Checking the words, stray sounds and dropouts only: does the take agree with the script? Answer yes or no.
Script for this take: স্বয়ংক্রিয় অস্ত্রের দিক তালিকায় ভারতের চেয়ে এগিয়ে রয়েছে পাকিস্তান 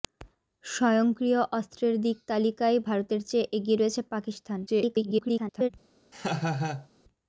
no